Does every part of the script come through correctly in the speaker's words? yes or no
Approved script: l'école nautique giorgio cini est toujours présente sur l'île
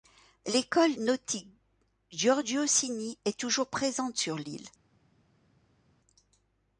yes